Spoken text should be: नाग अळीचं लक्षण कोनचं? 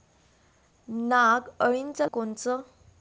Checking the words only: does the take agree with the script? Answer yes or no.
no